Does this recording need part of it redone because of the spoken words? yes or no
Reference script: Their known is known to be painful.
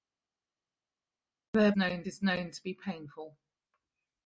no